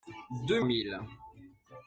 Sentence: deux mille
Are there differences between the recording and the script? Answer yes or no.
no